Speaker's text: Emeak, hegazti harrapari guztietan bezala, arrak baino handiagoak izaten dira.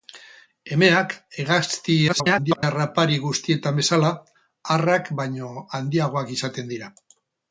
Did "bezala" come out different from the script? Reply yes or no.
no